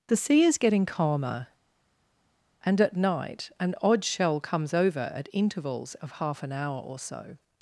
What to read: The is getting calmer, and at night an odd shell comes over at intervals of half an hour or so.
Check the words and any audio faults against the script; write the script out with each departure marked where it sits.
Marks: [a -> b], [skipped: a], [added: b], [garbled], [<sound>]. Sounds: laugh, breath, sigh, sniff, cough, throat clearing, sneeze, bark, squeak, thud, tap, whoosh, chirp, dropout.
The [added: sea] is getting calmer, and at night an odd shell comes over at intervals of half an hour or so.